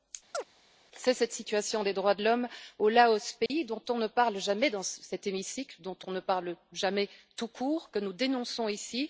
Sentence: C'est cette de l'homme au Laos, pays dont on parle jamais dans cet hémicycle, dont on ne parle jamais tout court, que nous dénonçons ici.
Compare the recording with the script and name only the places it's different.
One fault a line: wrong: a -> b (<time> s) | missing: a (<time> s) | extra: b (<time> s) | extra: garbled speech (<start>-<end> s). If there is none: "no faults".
extra: situation des droits (1.3 s)
extra: ne (4.0 s)